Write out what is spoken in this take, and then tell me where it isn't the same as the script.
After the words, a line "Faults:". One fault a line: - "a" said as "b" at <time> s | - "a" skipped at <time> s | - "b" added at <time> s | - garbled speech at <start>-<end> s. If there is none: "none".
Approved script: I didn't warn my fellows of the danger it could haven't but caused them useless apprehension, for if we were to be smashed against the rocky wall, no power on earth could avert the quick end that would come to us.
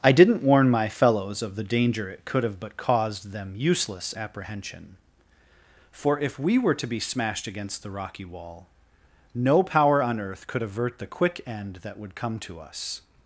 I didn't warn my fellows of the danger it could have but caused them useless apprehension, for if we were to be smashed against the rocky wall, no power on earth could avert the quick end that would come to us.
Faults:
- "haven't" said as "have" at 2.4 s